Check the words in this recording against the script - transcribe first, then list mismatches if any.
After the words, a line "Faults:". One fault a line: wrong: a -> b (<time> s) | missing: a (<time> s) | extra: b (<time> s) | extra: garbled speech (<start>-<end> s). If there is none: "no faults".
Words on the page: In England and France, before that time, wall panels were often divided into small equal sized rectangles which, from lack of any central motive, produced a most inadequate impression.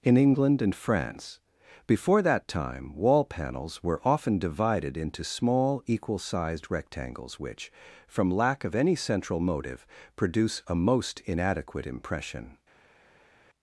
In England and France, before that time, wall panels were often divided into small equal sized rectangles which, from lack of any central motive, produce a most inadequate impression.
Faults:
wrong: produced -> produce (10.2 s)